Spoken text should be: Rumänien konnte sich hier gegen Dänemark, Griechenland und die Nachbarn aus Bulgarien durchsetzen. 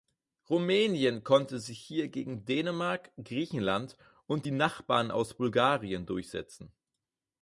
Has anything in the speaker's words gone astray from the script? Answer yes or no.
no